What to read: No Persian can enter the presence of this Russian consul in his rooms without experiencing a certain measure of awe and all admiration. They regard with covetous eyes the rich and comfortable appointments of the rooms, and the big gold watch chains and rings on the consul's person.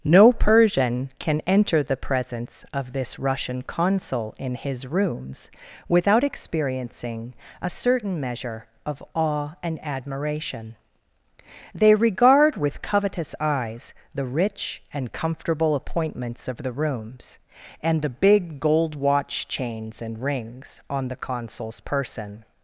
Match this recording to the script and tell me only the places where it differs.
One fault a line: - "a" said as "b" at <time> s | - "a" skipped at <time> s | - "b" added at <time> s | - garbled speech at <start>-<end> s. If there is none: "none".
- "all" skipped at 9.8 s